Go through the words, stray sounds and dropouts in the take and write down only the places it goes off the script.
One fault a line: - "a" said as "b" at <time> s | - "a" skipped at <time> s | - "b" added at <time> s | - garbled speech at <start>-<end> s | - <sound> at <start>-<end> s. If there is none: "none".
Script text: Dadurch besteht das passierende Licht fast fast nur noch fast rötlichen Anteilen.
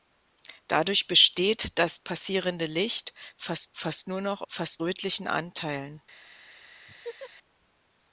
- laugh at 6.9-7.3 s